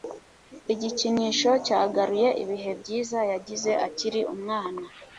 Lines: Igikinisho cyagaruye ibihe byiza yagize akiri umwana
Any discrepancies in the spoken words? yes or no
no